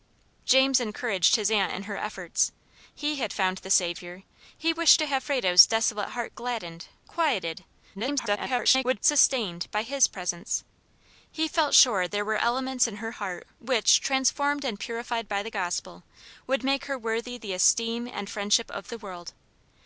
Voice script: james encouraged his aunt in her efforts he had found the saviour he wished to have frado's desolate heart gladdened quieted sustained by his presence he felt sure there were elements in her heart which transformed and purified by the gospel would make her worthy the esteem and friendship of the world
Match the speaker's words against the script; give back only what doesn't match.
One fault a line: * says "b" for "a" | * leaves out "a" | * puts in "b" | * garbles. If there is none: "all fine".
* garbles